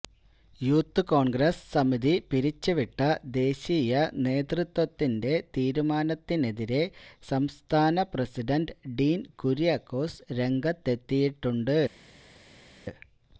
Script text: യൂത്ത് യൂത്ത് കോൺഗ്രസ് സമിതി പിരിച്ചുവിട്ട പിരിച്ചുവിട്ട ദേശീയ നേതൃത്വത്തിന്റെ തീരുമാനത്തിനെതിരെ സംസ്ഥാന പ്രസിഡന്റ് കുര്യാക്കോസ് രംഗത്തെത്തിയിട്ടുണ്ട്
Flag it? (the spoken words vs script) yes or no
yes